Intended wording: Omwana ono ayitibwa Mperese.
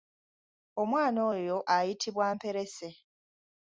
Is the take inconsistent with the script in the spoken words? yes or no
yes